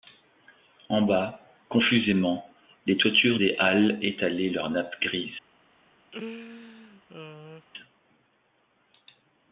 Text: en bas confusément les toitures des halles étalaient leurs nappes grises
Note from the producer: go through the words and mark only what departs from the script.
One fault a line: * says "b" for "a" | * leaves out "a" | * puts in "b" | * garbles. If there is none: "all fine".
all fine